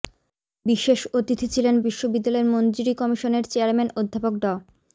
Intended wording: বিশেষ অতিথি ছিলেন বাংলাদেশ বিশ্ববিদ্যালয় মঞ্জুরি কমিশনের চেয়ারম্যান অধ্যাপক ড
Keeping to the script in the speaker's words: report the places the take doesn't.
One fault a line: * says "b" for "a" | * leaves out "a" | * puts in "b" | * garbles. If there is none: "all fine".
* leaves out "বাংলাদেশ"